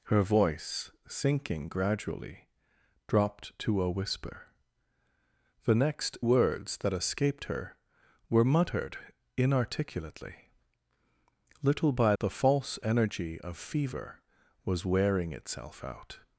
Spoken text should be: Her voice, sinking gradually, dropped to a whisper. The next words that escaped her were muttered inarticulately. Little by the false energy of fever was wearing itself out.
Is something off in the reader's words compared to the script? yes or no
no